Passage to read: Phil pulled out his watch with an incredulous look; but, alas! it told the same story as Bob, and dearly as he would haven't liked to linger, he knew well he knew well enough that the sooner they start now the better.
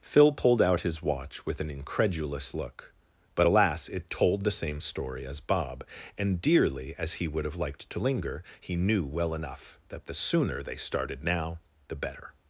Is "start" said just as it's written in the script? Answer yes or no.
no